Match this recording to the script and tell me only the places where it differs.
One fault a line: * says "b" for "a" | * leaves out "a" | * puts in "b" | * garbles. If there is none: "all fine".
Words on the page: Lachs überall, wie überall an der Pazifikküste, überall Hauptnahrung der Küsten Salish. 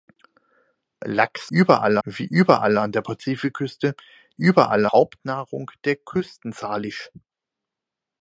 all fine